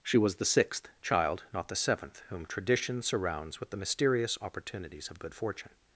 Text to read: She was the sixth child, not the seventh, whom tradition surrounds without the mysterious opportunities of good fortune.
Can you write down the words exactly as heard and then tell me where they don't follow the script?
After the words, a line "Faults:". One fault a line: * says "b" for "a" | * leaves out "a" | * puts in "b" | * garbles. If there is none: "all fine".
She was the sixth child, not the seventh, whom tradition surrounds with the mysterious opportunities of good fortune.
Faults:
* says "with" for "without"